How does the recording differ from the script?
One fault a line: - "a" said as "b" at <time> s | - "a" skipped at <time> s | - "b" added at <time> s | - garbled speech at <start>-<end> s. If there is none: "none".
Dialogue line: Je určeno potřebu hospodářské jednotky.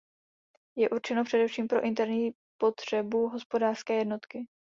- "především pro interní" added at 1.2 s